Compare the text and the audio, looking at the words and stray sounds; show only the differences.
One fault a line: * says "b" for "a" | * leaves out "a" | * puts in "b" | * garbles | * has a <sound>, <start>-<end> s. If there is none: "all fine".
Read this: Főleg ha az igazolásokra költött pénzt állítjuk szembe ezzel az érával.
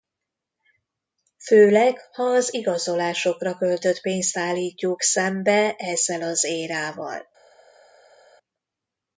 all fine